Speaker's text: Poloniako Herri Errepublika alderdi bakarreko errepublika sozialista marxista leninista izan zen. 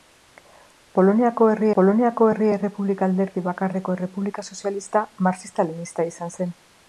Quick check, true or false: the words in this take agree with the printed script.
false